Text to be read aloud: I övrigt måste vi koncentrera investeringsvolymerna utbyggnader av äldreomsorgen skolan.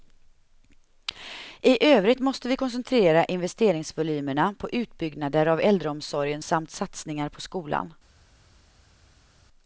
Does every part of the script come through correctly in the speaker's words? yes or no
no